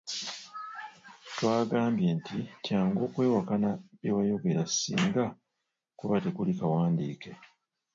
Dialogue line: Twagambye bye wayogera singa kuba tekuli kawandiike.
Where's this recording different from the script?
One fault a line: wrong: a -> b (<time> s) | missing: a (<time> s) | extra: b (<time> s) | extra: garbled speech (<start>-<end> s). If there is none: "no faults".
extra: nti kyangu okwewakana (2.2 s)